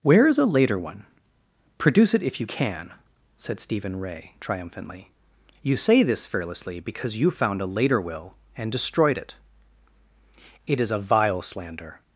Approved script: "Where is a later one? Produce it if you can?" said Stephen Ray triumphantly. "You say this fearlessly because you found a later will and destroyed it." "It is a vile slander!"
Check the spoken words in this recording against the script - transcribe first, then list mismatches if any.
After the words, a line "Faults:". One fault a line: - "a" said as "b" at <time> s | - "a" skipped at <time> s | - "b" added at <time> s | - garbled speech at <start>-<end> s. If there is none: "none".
"Where is a later one? Produce it if you can?" said Stephen Ray triumphantly. "You say this fearlessly because you found a later will and destroyed it." "It is a vile slander!"
Faults:
none